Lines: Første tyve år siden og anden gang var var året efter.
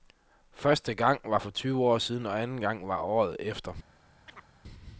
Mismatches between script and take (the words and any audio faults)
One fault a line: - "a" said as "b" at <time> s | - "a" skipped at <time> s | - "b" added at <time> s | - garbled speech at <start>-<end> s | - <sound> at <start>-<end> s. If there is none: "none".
- "gang var for" added at 0.9 s
- "var" skipped at 3.0 s
- chirp at 4.3-4.5 s